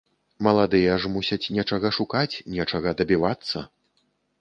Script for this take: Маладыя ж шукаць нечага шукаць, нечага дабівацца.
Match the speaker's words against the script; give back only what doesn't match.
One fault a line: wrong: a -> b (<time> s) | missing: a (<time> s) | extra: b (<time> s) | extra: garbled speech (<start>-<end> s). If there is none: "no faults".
wrong: шукаць -> мусяць (1.2 s)